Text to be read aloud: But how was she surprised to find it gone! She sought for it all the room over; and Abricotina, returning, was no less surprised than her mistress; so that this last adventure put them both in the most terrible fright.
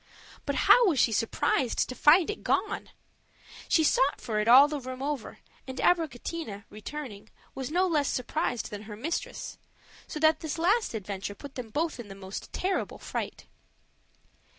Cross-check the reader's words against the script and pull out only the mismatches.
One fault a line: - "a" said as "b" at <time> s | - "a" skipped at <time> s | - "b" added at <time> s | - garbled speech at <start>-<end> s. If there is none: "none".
none